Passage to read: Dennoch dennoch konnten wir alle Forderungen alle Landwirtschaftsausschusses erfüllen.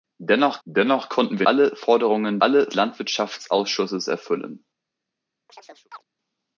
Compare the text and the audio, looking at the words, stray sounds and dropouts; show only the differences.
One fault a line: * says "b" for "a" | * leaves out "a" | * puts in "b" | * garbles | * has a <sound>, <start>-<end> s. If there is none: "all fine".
* has a chirp, 5.5-6.0 s